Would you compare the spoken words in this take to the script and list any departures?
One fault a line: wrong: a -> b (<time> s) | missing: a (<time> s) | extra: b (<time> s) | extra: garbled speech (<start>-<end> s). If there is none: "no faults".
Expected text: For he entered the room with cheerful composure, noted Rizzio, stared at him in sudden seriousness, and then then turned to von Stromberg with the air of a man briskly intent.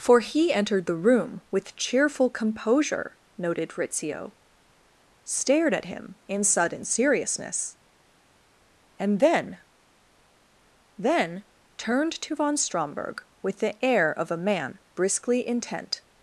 no faults